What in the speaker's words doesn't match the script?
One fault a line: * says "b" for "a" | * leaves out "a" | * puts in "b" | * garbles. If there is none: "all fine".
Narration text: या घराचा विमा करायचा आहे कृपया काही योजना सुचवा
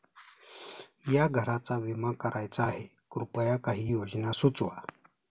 all fine